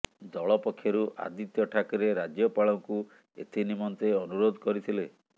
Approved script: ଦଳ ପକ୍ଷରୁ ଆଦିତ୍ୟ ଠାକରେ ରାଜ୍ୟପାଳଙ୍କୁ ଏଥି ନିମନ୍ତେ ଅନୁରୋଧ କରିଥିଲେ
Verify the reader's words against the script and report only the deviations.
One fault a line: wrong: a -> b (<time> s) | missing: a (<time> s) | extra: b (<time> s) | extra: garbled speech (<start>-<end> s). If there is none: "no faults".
no faults